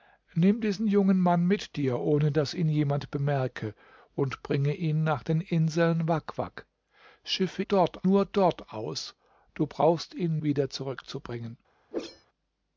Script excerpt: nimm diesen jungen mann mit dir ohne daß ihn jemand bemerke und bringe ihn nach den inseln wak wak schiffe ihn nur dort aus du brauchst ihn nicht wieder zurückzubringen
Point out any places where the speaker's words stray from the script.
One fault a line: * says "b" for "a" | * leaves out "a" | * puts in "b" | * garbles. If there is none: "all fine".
* says "dort" for "ihn"
* leaves out "nicht"